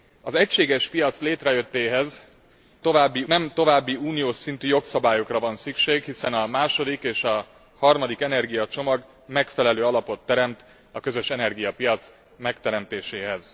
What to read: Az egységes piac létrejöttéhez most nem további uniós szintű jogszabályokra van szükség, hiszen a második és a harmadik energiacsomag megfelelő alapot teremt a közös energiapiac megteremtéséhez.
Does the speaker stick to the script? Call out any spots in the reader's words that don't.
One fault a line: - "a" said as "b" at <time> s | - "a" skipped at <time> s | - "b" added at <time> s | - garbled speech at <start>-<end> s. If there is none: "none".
- "most" said as "további" at 2.8 s